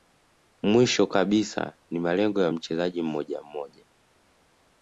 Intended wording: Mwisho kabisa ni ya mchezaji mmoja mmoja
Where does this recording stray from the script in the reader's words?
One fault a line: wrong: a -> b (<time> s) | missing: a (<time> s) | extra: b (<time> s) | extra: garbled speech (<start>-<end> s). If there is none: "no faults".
extra: malengo (2.0 s)